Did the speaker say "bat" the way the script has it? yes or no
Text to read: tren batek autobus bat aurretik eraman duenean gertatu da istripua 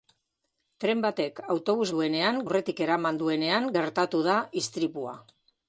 no